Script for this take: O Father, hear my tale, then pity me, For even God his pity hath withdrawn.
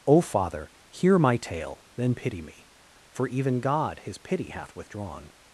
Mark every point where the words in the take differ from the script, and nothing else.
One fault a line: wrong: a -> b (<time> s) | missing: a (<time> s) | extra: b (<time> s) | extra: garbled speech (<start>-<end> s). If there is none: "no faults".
no faults